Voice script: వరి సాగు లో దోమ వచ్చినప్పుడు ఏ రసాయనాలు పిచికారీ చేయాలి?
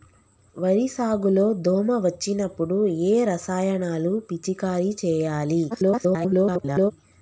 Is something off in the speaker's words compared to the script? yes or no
yes